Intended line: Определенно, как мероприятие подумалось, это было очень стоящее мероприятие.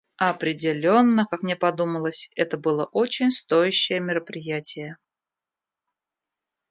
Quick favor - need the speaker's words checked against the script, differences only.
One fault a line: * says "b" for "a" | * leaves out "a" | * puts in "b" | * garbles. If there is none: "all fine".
* says "мне" for "мероприятие"